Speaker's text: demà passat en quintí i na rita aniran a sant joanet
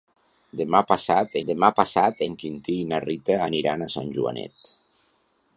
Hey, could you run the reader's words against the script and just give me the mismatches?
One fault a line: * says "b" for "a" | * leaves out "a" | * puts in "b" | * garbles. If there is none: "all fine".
* puts in "demà passat"